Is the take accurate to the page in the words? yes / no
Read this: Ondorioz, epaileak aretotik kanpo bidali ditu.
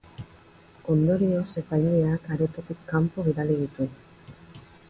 yes